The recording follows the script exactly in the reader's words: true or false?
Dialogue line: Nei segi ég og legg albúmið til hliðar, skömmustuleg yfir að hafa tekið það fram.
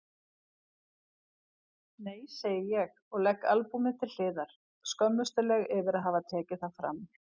true